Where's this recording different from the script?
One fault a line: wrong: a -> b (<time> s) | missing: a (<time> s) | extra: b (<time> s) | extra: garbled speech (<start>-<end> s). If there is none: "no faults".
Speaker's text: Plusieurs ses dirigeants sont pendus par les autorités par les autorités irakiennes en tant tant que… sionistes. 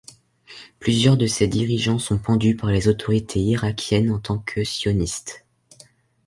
extra: de (1.1 s)
missing: par les autorités (3.4 s)
missing: tant (4.4 s)